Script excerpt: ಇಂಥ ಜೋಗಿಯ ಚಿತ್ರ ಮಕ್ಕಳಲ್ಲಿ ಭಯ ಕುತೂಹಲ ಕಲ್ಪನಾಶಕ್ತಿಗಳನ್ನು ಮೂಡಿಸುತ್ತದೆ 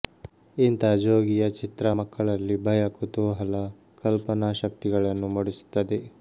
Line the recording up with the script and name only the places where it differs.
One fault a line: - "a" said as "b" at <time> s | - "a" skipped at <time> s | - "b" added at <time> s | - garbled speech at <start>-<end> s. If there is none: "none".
none